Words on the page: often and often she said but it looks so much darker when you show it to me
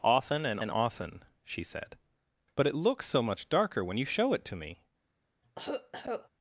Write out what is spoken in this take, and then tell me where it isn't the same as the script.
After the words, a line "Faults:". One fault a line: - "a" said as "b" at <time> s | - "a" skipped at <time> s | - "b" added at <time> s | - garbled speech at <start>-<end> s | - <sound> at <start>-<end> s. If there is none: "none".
often and and often she said but it looks so much darker when you show it to me
Faults:
- "and" added at 0.6 s
- cough at 5.4-6.3 s